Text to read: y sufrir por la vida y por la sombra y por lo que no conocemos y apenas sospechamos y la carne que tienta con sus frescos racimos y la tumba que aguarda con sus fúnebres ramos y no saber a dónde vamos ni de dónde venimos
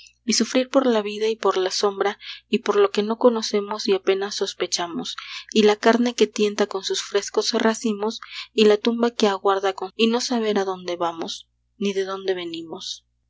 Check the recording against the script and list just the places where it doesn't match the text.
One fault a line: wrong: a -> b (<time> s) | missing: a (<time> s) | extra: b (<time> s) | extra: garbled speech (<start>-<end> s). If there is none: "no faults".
missing: sus fúnebres ramos (9.9 s)